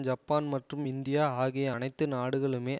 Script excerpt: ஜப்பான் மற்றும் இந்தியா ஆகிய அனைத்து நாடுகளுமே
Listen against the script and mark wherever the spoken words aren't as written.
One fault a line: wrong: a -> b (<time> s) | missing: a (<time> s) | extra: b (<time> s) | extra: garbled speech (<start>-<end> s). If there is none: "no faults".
no faults